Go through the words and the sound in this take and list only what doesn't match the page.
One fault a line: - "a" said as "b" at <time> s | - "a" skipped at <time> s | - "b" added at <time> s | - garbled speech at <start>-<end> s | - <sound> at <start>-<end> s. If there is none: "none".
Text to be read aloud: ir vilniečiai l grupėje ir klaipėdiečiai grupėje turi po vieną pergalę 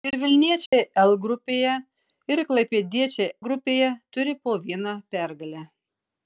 - dropout at 0.7-0.7 s